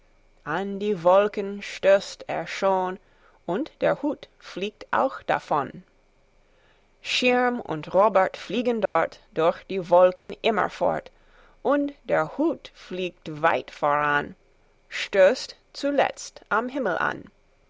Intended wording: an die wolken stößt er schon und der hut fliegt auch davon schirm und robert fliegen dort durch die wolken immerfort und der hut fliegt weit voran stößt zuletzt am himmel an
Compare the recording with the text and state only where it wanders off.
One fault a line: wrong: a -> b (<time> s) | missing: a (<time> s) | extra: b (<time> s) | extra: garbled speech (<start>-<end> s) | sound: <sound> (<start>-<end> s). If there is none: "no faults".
sound: dropout (8.9-9.0 s)
sound: dropout (10.2-10.3 s)